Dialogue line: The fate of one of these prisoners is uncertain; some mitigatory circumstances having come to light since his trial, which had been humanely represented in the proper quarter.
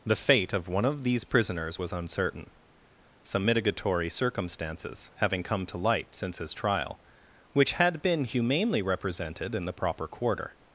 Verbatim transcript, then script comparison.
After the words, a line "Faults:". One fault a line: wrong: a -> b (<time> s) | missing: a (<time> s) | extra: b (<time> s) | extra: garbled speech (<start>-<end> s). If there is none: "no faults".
The fate of one of these prisoners was uncertain; some mitigatory circumstances having come to light since his trial, which had been humanely represented in the proper quarter.
Faults:
wrong: is -> was (1.8 s)